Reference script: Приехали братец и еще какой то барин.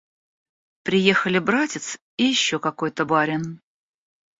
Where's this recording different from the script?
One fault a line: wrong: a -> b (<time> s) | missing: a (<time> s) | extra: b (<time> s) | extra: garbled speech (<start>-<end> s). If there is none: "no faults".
no faults